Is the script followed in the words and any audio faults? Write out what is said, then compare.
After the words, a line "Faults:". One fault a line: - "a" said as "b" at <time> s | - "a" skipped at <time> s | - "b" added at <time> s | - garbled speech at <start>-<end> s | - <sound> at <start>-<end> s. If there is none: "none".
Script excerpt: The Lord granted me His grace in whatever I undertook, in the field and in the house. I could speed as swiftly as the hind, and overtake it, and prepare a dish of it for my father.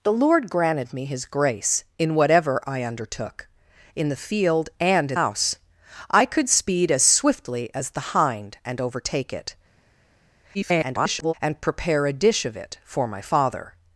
The Lord granted me His grace in whatever I undertook, in the field and in house. I could speed as swiftly as the hind, and overtake it, [garbled] and prepare a dish of it for my father.
Faults:
- "the" skipped at 5.2 s
- garbled speech at 10.5-11.3 s